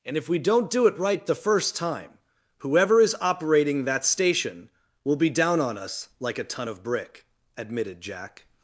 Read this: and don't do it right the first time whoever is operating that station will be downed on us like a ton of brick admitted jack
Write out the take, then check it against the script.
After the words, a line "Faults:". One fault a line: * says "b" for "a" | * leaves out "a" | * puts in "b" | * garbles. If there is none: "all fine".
and if we don't do it right the first time whoever is operating that station will be down on us like a ton of brick admitted jack
Faults:
* puts in "if we"
* says "down" for "downed"